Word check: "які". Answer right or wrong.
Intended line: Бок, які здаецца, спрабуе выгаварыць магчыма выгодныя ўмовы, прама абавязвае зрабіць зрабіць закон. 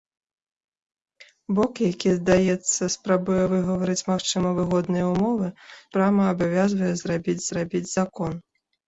right